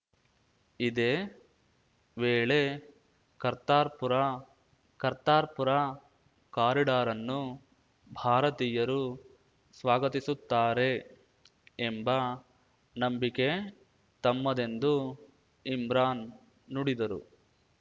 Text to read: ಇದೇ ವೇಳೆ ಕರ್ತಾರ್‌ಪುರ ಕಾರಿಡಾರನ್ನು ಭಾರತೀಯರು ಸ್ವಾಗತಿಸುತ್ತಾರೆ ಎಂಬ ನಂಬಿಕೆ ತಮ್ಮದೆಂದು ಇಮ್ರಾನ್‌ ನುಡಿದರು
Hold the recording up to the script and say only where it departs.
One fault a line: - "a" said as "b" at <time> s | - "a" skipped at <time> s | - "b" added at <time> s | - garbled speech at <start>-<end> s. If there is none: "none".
- "ಕರ್ತಾರ್‌ಪುರ" added at 5.0 s